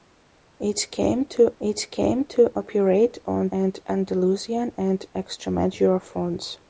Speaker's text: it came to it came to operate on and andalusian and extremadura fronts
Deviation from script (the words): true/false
false